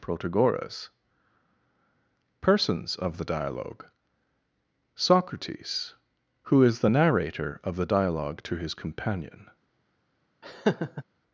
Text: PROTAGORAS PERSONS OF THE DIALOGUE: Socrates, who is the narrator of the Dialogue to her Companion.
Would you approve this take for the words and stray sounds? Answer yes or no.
no